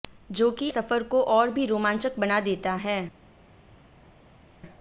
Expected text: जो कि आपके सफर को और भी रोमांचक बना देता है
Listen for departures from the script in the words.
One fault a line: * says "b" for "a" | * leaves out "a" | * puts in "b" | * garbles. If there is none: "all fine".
* leaves out "आपके"